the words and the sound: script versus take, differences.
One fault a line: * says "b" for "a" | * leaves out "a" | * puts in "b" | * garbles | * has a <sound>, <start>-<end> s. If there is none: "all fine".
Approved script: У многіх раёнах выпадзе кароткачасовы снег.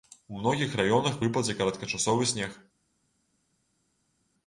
all fine